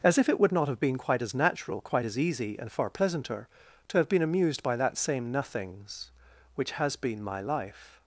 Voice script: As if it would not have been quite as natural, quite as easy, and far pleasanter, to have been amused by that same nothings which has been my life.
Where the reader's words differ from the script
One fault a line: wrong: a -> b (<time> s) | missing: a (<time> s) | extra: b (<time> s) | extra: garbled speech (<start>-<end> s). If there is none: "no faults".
no faults